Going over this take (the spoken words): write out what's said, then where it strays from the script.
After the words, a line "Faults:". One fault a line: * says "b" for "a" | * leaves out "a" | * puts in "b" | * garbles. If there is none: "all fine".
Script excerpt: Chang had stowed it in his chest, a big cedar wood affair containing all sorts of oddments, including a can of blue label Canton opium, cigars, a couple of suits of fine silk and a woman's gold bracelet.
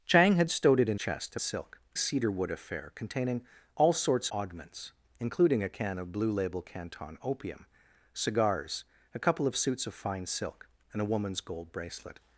Chang had stowed it in chest, a silk cedar wood affair containing all sorts oddments, including a can of blue label Canton opium, cigars, a couple of suits of fine silk and a woman's gold bracelet.
Faults:
* leaves out "his"
* says "silk" for "big"
* leaves out "of"